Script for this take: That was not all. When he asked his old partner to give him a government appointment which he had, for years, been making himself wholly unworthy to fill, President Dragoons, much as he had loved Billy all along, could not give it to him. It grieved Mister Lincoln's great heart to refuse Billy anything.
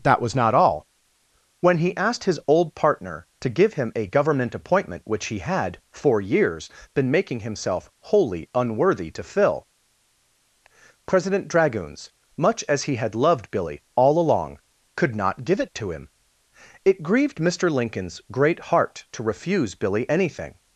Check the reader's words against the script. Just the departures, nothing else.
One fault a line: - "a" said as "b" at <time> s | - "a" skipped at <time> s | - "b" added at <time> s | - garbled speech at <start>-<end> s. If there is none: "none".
none